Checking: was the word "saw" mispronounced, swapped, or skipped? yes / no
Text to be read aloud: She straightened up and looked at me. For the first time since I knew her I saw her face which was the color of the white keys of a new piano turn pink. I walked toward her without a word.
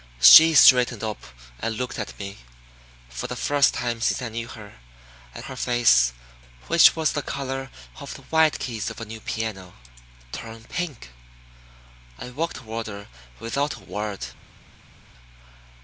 yes